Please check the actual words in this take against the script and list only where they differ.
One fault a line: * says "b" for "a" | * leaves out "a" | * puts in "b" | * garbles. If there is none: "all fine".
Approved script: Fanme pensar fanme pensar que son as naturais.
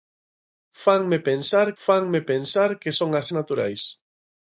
all fine